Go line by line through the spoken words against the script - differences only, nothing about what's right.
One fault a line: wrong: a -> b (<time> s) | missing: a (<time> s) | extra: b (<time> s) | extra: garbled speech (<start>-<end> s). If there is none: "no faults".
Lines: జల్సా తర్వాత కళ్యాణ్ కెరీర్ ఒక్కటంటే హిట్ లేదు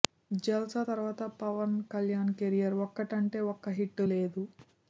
extra: పవన్ (1.4 s)
extra: ఒక్క (3.5 s)